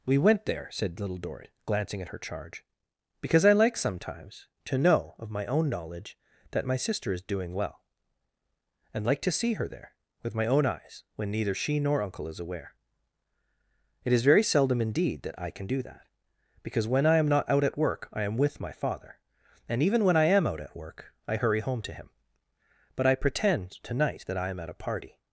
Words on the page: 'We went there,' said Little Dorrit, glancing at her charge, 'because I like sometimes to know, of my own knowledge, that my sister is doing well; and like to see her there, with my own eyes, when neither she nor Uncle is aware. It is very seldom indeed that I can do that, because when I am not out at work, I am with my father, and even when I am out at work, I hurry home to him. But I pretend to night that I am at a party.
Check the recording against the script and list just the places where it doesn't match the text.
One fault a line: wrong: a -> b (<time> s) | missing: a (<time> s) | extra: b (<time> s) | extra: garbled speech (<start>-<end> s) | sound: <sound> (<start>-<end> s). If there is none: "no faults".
no faults